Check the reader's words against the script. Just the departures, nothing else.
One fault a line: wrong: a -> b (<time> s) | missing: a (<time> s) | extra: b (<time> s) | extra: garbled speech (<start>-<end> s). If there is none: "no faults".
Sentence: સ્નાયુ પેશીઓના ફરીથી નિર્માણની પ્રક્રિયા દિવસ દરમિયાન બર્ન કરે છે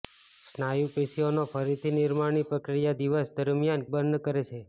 no faults